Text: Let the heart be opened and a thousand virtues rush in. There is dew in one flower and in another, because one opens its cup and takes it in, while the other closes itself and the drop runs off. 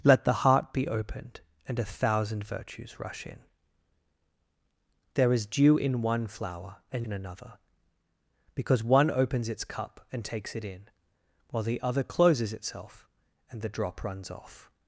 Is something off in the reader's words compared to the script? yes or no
no